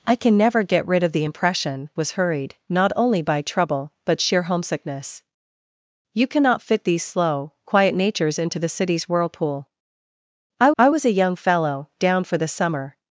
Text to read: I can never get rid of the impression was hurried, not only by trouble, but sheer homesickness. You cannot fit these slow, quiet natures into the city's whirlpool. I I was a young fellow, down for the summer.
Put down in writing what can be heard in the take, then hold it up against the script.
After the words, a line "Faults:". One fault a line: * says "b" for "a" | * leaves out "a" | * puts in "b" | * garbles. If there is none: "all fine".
I can never get rid of the impression was hurried, not only by trouble, but sheer homesickness. You cannot fit these slow, quiet natures into the city's whirlpool. I I was a young fellow, down for the summer.
Faults:
all fine